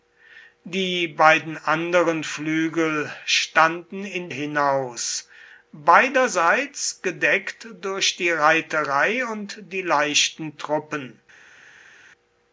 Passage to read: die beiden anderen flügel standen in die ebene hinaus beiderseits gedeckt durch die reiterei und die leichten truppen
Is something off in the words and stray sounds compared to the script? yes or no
yes